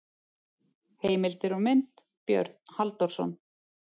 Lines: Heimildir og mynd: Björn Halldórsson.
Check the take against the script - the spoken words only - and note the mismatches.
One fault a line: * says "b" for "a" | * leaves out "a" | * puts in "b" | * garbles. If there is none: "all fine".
all fine